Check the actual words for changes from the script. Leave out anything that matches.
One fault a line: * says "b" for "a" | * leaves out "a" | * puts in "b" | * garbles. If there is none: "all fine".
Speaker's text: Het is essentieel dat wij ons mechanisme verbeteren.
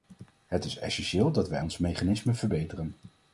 all fine